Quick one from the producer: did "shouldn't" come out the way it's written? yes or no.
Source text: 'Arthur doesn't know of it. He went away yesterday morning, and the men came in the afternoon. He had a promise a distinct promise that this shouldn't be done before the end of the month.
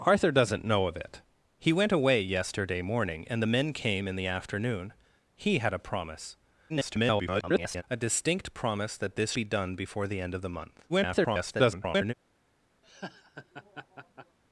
no